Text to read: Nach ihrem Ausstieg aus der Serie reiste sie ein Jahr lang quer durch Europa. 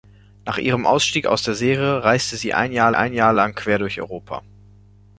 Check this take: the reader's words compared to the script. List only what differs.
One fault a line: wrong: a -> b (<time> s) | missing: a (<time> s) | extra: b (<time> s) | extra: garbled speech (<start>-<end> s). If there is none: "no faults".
extra: ein Jahr (3.0 s)